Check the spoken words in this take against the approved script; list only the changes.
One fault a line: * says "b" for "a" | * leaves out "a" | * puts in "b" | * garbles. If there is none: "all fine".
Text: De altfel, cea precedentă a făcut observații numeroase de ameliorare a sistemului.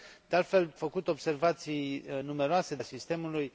* leaves out "cea precedentă a"
* leaves out "ameliorare"